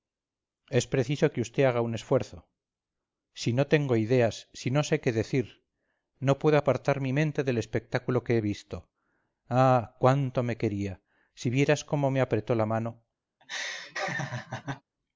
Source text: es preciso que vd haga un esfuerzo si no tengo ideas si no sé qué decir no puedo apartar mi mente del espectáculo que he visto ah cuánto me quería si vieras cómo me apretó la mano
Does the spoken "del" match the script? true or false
true